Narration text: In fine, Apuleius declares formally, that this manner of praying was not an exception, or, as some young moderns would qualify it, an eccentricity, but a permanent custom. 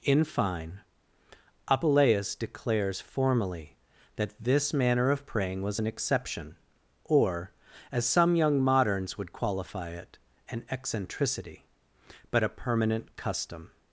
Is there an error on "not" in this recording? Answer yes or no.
yes